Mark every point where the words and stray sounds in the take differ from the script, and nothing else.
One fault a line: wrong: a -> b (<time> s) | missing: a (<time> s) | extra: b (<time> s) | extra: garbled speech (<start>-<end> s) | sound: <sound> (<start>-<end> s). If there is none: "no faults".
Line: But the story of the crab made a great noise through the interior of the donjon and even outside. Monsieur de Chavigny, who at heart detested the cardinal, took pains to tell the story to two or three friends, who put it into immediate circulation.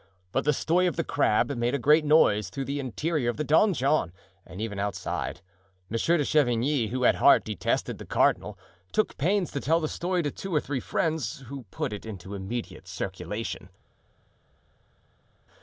no faults